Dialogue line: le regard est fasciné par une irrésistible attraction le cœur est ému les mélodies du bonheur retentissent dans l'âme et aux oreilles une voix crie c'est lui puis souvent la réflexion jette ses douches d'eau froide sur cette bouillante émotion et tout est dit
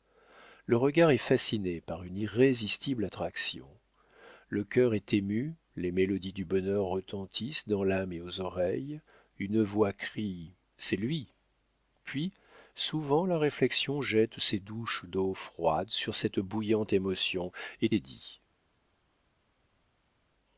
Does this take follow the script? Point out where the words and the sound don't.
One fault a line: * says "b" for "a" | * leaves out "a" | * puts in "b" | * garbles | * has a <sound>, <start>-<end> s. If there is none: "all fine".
* leaves out "tout"